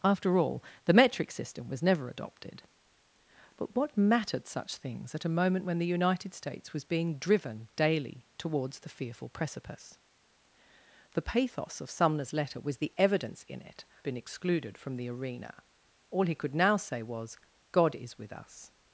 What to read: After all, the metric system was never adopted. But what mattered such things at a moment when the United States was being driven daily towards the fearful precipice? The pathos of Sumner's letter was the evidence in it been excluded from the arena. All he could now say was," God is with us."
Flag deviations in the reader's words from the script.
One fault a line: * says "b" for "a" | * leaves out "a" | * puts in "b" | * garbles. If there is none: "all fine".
all fine